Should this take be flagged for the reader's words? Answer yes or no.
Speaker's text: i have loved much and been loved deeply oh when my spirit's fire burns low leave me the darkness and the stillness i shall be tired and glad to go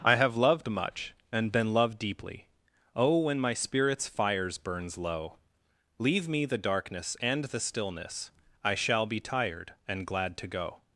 yes